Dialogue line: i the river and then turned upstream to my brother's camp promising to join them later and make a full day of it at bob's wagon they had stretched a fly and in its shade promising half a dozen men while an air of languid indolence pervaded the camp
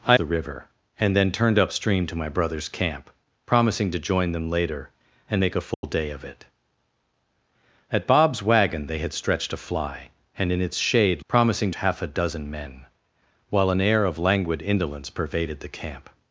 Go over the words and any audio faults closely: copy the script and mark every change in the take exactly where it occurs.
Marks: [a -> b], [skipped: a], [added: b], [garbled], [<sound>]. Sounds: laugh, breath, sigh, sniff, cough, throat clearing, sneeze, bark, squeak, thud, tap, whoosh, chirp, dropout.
i the river and then turned upstream to my brother's camp promising to join them later and make a full [dropout] day of it at bob's wagon they had stretched a fly and in its shade promising half a dozen men while an air of languid indolence pervaded the camp